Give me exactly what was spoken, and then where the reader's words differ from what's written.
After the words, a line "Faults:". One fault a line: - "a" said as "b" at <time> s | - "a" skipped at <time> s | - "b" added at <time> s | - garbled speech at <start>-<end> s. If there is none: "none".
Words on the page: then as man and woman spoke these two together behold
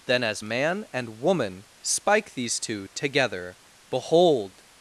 then as man and woman spike these two together behold
Faults:
- "spoke" said as "spike" at 1.8 s